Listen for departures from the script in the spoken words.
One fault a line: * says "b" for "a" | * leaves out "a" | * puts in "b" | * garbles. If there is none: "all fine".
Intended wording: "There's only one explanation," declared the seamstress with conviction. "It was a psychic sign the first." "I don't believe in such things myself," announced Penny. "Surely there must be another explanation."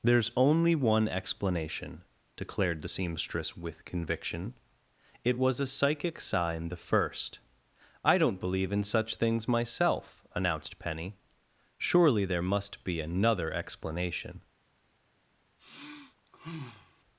all fine